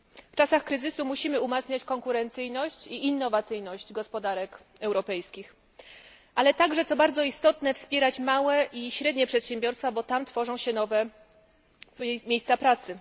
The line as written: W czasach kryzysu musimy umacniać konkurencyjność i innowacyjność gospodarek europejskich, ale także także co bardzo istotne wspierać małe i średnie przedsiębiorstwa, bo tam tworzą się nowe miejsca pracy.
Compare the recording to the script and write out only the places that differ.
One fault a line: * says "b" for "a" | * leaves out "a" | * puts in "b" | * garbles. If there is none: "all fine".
* leaves out "także"